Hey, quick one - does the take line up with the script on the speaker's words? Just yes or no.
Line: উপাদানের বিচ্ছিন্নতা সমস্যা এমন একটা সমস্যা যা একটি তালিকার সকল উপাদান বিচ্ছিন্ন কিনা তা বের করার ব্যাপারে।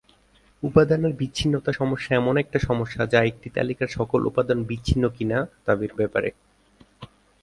no